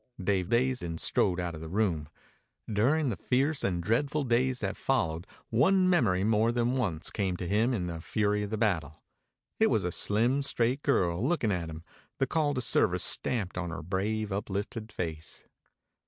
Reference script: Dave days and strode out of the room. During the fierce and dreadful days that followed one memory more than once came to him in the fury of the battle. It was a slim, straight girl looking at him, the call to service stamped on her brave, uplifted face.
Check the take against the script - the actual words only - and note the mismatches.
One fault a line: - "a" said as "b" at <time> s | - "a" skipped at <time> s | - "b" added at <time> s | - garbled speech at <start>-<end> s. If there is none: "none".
none